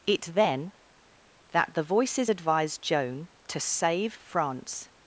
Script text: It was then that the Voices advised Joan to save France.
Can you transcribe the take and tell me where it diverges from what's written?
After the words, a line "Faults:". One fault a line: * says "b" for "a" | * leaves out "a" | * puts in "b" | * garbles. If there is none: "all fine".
It then that the Voices advised Joan to save France.
Faults:
* leaves out "was"